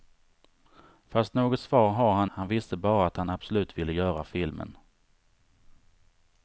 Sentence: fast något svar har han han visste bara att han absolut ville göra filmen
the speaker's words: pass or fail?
pass